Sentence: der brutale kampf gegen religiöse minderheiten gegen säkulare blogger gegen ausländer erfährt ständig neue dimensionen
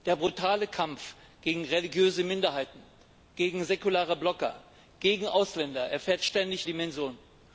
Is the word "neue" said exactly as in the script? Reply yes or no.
no